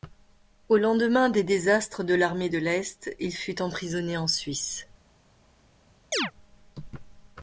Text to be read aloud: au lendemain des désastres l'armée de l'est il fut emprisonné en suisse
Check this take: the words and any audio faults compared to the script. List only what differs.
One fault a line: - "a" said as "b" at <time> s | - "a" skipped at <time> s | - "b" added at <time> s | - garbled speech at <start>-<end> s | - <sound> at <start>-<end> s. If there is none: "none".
- "de" added at 2.0 s
- chirp at 6.1-6.3 s